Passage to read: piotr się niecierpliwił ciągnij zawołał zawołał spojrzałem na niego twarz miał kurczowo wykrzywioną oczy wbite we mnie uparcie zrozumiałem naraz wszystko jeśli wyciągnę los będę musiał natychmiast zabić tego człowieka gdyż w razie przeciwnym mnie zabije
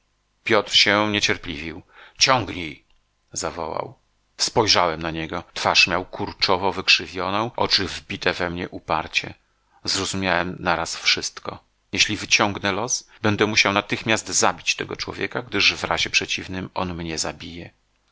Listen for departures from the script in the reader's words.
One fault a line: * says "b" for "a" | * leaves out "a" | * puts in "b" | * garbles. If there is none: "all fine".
* leaves out "zawołał"
* puts in "on"